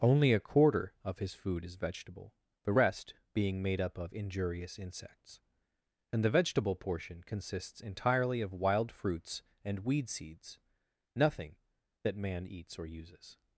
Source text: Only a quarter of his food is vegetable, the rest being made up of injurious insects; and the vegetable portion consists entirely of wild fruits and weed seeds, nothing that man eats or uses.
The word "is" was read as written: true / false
true